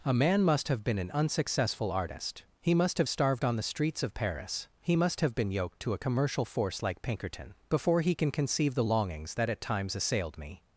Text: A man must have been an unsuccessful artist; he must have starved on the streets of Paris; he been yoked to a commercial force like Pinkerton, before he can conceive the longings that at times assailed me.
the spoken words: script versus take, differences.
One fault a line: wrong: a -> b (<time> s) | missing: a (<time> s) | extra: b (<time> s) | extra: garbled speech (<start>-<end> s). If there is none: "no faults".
extra: must have (4.9 s)